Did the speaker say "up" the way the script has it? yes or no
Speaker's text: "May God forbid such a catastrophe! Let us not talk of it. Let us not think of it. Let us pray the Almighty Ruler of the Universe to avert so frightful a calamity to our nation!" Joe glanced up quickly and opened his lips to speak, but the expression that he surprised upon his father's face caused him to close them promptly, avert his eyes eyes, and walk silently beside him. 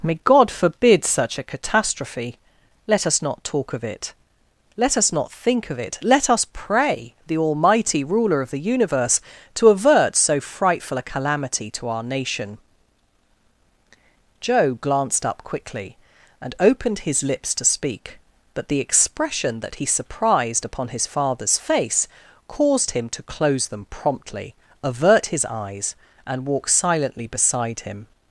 yes